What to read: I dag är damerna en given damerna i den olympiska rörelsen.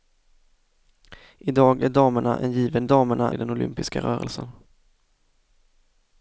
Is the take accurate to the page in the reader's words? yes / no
yes